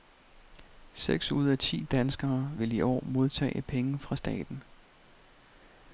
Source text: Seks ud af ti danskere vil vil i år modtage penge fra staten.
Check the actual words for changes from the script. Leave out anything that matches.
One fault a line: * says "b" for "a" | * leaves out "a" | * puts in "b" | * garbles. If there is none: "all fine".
* leaves out "vil"